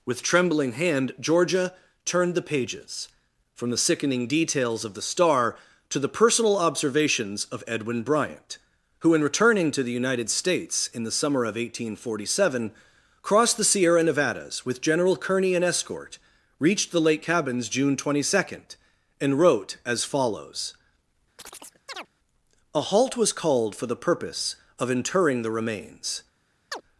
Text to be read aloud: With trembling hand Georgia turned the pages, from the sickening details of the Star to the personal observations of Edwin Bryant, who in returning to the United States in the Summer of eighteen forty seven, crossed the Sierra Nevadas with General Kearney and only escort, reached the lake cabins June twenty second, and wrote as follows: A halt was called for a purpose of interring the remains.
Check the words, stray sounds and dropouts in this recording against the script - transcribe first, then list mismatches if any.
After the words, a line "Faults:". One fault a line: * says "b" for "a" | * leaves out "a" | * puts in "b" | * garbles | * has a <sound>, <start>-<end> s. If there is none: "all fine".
With trembling hand Georgia turned the pages, from the sickening details of the Star to the personal observations of Edwin Bryant, who in returning to the United States in the Summer of eighteen forty seven, crossed the Sierra Nevadas with General Kearney and escort, reached the lake cabins June twenty second, and wrote as follows: A halt was called for the purpose of interring the remains.
Faults:
* leaves out "only"
* has a chirp, 21.4-22.1 s
* says "the" for "a"
* has a chirp, 26.7-26.8 s